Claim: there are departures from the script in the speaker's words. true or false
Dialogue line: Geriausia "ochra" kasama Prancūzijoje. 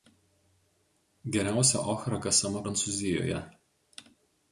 false